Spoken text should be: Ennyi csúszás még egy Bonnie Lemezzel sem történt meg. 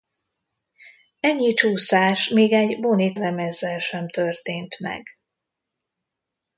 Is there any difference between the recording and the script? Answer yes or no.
no